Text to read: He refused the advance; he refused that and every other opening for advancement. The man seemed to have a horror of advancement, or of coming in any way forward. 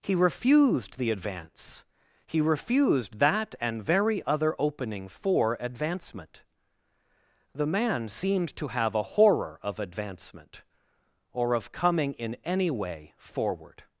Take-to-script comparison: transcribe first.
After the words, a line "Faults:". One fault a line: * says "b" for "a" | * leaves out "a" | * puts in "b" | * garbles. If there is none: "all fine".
He refused the advance; he refused that and very other opening for advancement. The man seemed to have a horror of advancement, or of coming in any way forward.
Faults:
* says "very" for "every"